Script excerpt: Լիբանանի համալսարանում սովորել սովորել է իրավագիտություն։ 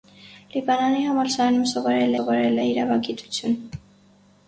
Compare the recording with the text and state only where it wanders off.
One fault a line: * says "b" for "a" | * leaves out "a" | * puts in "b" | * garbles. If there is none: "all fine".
all fine